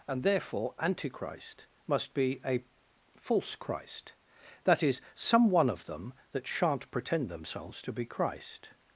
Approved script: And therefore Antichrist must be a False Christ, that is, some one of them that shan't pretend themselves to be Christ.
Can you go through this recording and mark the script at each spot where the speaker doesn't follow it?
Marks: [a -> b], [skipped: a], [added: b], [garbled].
And therefore Antichrist must be a False Christ, that is, some one of them that shan't pretend themselves to be Christ.